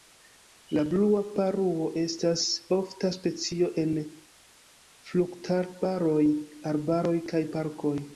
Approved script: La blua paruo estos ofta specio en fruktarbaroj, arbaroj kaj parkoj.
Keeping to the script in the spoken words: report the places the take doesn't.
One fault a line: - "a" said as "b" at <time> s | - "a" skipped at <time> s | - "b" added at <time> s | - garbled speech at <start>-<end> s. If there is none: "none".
- "estos" said as "estas" at 2.0 s